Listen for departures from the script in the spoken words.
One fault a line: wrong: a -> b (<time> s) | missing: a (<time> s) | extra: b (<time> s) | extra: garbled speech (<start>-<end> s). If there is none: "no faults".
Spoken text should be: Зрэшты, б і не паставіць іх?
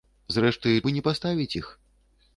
no faults